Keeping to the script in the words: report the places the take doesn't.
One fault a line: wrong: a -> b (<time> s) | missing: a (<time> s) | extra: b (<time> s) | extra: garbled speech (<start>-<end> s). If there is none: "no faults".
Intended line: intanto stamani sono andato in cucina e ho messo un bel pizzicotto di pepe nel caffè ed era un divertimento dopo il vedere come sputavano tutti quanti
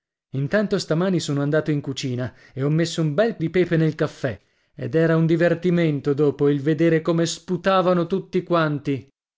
missing: pizzicotto (3.4 s)